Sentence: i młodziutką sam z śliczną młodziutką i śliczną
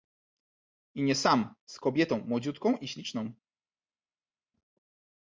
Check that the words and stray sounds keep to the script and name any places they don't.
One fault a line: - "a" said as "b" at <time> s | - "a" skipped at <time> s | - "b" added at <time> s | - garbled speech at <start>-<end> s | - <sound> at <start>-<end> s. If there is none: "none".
- "młodziutką" said as "nie" at 1.0 s
- "śliczną" said as "kobietą" at 1.8 s